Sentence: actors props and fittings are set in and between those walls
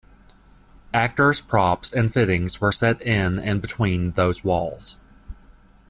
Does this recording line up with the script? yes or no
no